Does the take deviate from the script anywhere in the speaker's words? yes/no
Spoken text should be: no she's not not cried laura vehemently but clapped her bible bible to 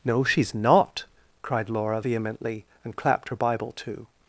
yes